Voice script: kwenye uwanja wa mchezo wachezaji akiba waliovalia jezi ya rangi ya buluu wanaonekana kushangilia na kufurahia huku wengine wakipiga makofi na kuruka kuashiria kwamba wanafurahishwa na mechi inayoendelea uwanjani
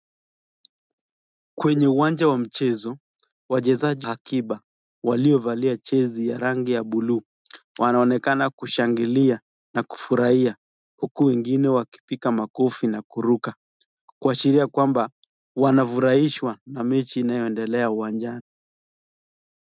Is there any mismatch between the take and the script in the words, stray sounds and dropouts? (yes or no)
no